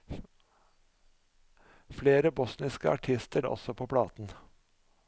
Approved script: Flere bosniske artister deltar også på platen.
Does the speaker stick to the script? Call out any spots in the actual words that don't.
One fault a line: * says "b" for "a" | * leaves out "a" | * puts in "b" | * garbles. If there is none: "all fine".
* leaves out "deltar"